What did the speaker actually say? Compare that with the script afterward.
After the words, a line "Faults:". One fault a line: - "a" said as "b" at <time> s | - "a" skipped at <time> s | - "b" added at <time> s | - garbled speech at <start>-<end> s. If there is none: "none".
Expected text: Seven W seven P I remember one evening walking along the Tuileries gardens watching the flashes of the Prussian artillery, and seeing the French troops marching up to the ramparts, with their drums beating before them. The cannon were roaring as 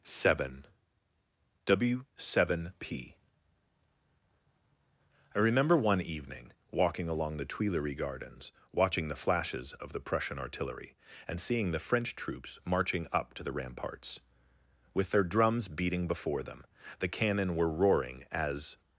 Seven W seven P I remember one evening walking along the Tuileries gardens watching the flashes of the Prussian artillery, and seeing the French troops marching up to the ramparts, with their drums beating before them. The cannon were roaring as
Faults:
none